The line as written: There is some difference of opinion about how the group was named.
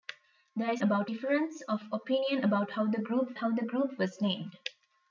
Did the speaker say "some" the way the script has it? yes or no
no